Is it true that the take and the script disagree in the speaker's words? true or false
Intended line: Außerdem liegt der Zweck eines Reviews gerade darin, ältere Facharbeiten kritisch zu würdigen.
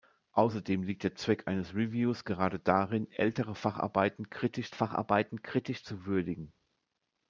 true